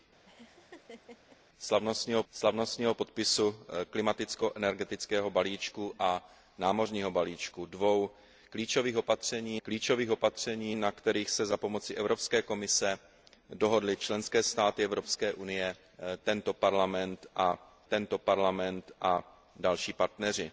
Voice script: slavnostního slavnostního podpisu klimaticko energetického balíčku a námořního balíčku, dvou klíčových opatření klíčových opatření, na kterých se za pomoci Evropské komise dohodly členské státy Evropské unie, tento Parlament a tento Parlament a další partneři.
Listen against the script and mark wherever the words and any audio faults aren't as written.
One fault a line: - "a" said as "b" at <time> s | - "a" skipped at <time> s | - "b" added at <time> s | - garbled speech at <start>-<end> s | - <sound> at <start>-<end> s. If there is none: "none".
- laugh at 0.2-1.4 s